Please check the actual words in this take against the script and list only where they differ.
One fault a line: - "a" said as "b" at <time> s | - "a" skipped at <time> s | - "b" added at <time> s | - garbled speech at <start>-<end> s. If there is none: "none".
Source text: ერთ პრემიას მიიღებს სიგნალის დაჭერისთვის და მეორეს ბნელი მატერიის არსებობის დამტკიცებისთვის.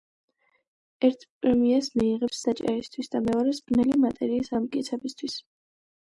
- "სიგნალის" skipped at 2.4 s
- "არსებობის" skipped at 4.5 s